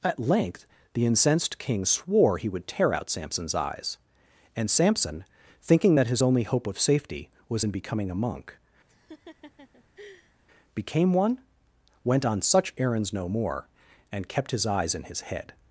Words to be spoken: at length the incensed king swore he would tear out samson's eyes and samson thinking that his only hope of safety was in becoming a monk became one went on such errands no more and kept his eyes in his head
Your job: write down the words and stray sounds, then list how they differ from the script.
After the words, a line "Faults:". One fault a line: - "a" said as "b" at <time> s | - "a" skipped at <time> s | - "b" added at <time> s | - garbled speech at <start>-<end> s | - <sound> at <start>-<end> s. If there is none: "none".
at length the incensed king swore he would tear out samson's eyes and samson thinking that his only hope of safety was in becoming a monk became one went on such errands no more and kept his eyes in his head
Faults:
- laugh at 8.9-10.4 s